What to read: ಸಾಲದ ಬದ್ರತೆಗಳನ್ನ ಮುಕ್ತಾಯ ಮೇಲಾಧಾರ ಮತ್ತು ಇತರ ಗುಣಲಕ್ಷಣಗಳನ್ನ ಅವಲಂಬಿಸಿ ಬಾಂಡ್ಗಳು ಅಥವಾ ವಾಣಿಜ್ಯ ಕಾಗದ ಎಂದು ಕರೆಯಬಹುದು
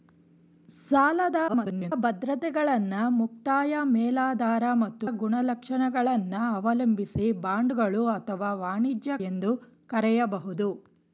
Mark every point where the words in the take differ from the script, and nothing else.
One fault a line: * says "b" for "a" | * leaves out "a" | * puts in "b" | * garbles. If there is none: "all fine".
* garbles
* leaves out "ಇತರ"
* leaves out "ಕಾಗದ"